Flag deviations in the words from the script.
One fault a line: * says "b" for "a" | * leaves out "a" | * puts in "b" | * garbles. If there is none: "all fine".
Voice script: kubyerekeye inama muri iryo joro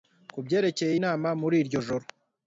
all fine